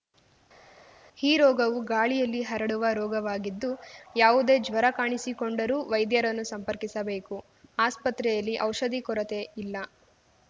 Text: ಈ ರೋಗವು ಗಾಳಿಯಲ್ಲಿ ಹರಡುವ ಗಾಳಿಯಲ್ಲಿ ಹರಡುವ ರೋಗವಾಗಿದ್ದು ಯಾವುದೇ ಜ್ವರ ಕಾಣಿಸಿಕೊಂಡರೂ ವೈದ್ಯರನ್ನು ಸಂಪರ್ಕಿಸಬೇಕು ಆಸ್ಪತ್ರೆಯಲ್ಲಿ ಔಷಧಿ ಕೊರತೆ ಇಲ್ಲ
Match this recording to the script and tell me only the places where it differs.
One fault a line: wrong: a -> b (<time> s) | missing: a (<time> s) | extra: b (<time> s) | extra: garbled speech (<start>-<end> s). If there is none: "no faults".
missing: ಗಾಳಿಯಲ್ಲಿ ಹರಡುವ (2.9 s)